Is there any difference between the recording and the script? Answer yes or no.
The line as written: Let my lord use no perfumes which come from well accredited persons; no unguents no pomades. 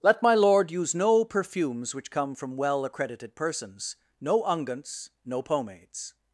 no